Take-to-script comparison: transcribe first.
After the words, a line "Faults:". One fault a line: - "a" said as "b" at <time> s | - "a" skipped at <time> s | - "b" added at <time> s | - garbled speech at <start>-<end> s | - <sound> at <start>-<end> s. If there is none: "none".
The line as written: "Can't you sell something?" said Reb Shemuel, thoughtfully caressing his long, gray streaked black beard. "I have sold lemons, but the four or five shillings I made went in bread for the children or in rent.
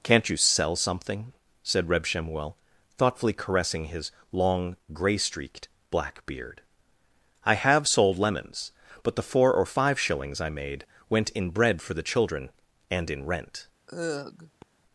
"Can't you sell something?" said Reb Shemuel, thoughtfully caressing his long, gray streaked black beard. "I have sold lemons, but the four or five shillings I made went in bread for the children and in rent.
Faults:
- "or" said as "and" at 12.9 s
- sigh at 13.9-14.6 s